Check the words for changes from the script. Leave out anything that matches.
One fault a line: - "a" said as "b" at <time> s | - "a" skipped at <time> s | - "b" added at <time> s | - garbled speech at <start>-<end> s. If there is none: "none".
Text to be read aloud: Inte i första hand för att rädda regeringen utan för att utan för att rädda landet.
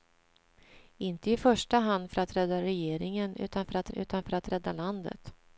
none